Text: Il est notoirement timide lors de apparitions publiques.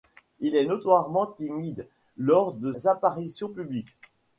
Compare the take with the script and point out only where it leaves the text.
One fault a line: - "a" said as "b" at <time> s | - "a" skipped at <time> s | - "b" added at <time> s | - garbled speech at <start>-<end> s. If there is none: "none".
none